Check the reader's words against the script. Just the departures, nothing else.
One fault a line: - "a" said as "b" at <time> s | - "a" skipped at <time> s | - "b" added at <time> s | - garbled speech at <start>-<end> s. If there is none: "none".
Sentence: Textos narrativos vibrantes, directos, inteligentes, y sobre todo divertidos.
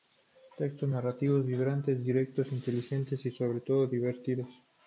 none